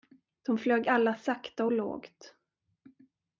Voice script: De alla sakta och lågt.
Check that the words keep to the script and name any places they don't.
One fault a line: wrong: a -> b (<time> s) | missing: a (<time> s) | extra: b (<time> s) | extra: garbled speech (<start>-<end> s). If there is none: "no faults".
extra: flög (0.6 s)